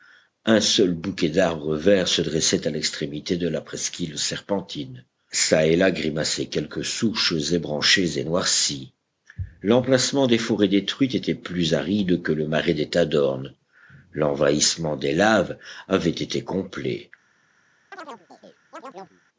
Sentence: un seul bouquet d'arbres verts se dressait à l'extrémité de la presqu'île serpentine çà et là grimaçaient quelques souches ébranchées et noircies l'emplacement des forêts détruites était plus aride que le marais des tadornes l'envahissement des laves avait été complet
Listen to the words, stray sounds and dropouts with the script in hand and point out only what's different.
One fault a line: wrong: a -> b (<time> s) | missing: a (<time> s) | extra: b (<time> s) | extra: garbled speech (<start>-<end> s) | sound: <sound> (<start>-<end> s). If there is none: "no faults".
sound: chirp (17.9-19.2 s)